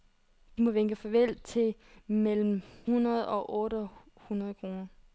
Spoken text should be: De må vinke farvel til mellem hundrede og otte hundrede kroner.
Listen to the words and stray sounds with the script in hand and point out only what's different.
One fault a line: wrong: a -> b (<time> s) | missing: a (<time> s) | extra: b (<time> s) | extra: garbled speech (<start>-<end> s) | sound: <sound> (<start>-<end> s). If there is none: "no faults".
no faults